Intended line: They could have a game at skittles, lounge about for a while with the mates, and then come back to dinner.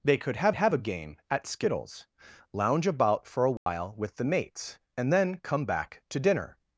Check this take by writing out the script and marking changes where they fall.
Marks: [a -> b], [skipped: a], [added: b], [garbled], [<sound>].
They could have [added: have] a game at skittles, lounge about for a while [dropout] with the mates, and then come back to dinner.